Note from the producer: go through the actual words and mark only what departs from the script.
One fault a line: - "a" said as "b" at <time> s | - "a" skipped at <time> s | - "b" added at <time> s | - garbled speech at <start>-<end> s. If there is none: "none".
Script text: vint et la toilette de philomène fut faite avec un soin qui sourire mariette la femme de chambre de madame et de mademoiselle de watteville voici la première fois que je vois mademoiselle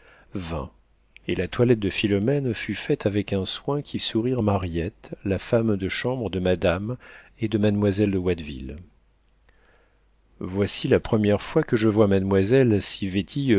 none